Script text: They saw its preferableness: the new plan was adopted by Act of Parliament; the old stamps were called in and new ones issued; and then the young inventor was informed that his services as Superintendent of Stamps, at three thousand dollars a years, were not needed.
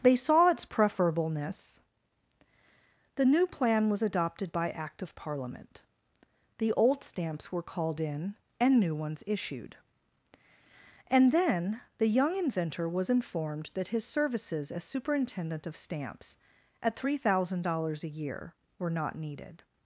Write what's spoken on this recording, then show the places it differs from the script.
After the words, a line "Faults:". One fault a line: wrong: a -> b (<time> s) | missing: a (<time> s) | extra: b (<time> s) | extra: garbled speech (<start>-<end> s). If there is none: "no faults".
They saw its preferableness: the new plan was adopted by Act of Parliament; the old stamps were called in and new ones issued; and then the young inventor was informed that his services as Superintendent of Stamps, at three thousand dollars a year, were not needed.
Faults:
wrong: years -> year (18.1 s)